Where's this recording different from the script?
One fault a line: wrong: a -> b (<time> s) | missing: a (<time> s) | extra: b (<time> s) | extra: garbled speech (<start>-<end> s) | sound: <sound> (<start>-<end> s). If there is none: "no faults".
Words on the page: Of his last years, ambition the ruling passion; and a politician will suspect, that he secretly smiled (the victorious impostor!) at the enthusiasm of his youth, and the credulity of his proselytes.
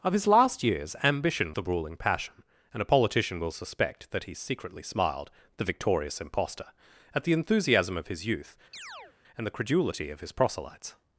sound: chirp (8.7-9.1 s)